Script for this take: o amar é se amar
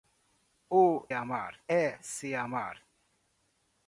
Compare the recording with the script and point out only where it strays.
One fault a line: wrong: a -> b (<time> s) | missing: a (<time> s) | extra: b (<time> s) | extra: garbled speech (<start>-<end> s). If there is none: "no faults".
no faults